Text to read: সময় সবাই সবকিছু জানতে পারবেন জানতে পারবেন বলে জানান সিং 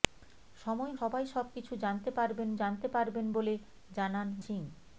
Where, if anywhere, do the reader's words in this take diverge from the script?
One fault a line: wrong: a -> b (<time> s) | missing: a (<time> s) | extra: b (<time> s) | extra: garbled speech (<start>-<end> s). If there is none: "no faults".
no faults